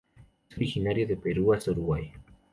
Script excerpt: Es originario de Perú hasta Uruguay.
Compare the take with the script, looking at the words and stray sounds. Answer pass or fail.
pass